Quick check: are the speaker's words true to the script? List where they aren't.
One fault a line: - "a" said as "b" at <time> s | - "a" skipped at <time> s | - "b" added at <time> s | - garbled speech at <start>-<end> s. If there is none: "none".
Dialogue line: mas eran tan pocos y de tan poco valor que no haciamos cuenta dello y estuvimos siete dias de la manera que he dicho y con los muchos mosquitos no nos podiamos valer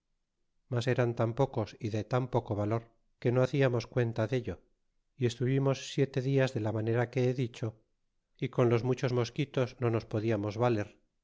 none